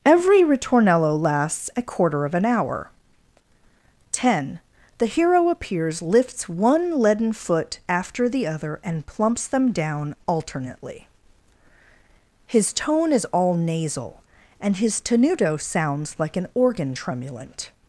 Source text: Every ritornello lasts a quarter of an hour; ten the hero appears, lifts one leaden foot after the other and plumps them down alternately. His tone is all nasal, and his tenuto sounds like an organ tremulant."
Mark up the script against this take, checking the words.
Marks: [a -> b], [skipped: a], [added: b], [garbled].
Every ritornello lasts a quarter of an hour; ten the hero appears, lifts one leaden foot after the other and plumps them down alternately. His tone is all nasal, and his tenuto sounds like an organ tremulant."